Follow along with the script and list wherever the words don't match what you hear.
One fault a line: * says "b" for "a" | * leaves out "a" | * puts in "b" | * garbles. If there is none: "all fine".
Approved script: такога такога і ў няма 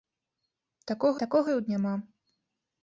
all fine